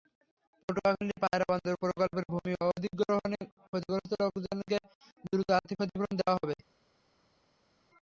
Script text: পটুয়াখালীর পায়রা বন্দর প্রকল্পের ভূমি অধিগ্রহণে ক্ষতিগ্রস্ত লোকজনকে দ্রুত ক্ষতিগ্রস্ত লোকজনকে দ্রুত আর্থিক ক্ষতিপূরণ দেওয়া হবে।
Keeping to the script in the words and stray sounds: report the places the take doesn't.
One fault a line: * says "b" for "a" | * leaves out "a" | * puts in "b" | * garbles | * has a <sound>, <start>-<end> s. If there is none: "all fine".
* leaves out "ক্ষতিগ্রস্ত লোকজনকে দ্রুত"